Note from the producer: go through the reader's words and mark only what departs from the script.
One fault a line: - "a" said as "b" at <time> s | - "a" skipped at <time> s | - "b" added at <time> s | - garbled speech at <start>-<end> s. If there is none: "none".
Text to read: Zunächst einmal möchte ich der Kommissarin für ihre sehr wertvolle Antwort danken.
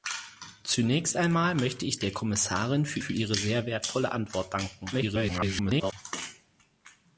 - "für" added at 3.0 s
- garbled speech at 4.9-5.9 s